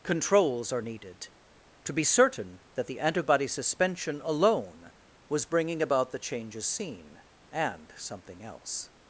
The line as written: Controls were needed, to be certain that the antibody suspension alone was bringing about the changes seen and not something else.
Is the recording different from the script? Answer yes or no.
yes